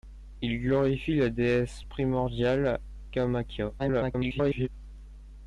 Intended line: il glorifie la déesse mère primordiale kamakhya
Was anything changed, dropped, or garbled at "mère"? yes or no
yes